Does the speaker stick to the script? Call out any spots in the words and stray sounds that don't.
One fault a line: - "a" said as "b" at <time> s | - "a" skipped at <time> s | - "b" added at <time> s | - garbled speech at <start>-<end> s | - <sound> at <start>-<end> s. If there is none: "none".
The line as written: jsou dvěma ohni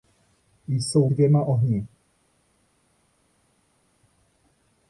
none